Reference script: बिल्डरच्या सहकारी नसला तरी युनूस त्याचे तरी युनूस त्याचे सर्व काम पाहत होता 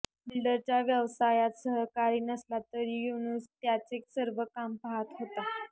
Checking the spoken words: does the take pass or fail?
fail